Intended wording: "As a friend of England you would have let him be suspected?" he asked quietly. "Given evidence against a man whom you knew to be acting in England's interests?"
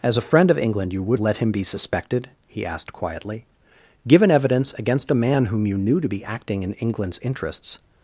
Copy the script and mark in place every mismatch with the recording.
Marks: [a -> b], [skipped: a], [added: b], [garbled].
"As a friend of England you would [skipped: have] let him be suspected?" he asked quietly. "Given evidence against a man whom you knew to be acting in England's interests?"